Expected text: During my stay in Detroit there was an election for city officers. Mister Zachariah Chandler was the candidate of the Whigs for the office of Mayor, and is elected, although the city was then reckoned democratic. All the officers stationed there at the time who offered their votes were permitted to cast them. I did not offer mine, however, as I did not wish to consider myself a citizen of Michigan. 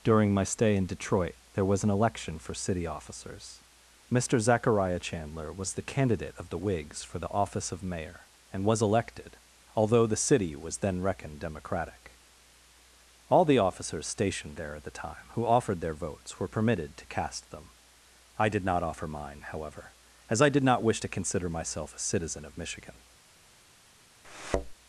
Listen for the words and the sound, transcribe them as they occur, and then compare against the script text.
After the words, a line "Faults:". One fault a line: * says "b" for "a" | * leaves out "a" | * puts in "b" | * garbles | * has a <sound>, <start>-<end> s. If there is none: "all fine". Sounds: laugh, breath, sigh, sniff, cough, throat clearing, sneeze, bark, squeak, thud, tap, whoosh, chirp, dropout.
During my stay in Detroit there was an election for city officers. Mister Zachariah Chandler was the candidate of the Whigs for the office of Mayor, and was elected, although the city was then reckoned democratic. All the officers stationed there at the time who offered their votes were permitted to cast them. I did not offer mine, however, as I did not wish to consider myself a citizen of Michigan.
Faults:
* says "was" for "is"
* has a thud, 24.2-24.7 s